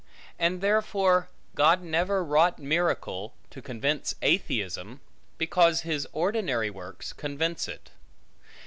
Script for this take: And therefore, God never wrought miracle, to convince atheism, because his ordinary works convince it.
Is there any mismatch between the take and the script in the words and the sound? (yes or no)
no